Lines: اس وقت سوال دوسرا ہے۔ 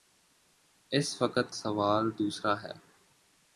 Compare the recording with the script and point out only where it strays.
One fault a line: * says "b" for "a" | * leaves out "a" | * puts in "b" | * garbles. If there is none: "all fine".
all fine